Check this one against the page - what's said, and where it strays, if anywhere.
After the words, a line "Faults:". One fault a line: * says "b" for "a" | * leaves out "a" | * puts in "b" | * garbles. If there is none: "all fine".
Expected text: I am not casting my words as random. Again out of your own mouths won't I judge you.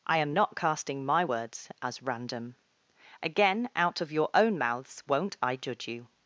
I am not casting my words as random. Again out of your own mouths won't I judge you.
Faults:
all fine